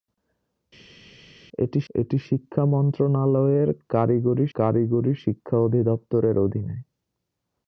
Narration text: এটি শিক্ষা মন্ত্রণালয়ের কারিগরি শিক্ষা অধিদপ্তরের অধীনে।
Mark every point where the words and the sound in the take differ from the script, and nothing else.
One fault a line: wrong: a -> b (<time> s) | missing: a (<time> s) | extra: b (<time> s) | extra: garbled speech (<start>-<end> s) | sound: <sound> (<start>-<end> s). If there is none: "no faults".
extra: এটি (1.9 s)
extra: কারিগরি (4.5 s)